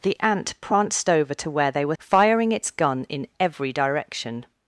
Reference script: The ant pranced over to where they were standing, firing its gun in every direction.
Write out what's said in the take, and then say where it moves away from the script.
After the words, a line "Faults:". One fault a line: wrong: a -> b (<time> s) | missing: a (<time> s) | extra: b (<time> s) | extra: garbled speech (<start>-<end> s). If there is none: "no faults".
The ant pranced over to where they were firing its gun in every direction.
Faults:
missing: standing (1.9 s)